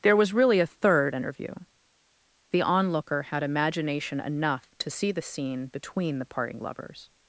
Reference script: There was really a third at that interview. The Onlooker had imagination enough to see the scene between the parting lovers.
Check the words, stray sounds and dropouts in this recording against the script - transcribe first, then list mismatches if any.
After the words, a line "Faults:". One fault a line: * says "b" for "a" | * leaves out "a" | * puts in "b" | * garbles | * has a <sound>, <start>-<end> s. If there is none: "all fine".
There was really a third interview. The Onlooker had imagination enough to see the scene between the parting lovers.
Faults:
* leaves out "at that"